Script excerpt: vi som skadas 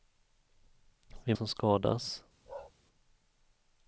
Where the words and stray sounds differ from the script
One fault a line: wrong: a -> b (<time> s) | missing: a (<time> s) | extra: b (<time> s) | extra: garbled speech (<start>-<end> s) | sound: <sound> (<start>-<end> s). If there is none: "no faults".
sound: bark (2.5-2.7 s)